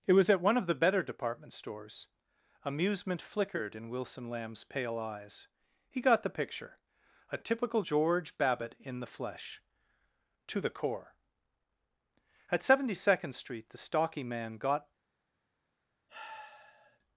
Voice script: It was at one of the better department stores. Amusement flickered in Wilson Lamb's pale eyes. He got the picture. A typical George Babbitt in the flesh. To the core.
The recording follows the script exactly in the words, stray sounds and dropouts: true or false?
false